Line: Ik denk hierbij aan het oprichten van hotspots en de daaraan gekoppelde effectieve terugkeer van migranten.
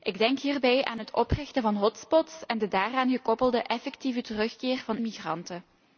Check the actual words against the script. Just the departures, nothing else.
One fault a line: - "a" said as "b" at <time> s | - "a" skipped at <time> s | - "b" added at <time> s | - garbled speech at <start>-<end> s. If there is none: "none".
none